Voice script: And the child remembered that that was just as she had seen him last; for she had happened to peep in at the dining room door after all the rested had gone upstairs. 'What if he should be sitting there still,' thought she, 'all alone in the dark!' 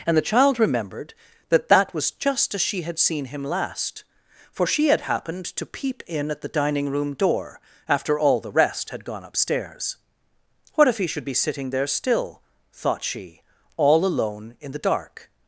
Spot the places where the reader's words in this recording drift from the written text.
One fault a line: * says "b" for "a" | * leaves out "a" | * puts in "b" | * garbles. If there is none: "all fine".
* says "rest" for "rested"